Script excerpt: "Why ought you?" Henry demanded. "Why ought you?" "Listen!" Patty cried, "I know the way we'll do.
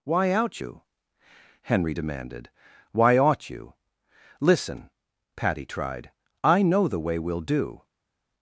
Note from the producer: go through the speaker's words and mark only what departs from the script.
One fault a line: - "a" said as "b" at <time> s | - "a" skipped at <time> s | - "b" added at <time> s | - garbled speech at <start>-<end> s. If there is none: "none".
- "ought" said as "out" at 0.3 s
- "cried" said as "tried" at 5.7 s